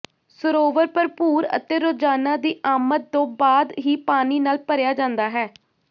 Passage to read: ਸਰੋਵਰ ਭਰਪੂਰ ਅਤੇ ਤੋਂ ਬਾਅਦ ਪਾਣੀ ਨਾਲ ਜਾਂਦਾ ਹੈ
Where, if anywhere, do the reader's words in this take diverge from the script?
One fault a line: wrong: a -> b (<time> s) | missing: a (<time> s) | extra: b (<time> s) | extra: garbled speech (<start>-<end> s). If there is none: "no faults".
extra: ਰੋਜ਼ਾਨਾ ਦੀ ਆਮਦ (1.8 s)
extra: ਹੀ (3.9 s)
extra: ਭਰਿਆ (4.6 s)